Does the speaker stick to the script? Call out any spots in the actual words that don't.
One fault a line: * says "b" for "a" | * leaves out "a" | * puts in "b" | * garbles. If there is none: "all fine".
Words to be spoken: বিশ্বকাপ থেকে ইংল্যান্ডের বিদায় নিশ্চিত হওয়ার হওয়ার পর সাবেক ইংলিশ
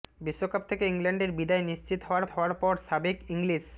all fine